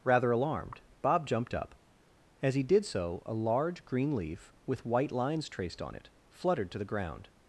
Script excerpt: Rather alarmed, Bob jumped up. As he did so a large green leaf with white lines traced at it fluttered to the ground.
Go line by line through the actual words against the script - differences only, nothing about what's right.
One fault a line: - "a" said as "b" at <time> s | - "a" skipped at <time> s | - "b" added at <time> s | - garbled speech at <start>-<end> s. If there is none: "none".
- "at" said as "on" at 5.8 s